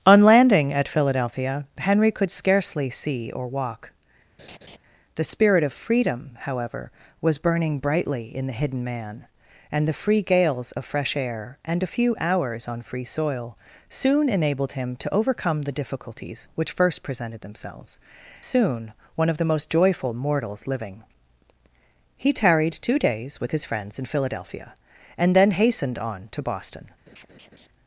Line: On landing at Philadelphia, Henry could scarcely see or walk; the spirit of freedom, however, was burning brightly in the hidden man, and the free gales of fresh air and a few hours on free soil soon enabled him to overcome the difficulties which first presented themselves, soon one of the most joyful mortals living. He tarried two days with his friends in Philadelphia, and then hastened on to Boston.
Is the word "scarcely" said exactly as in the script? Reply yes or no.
yes